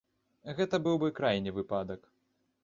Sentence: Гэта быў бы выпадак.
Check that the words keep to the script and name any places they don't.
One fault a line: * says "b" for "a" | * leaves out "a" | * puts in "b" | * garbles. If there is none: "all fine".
* puts in "крайні"